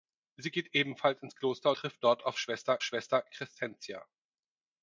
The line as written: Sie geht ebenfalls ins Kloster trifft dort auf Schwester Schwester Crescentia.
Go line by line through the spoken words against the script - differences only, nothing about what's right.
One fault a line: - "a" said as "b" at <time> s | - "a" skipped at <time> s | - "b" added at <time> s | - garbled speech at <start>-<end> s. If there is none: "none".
none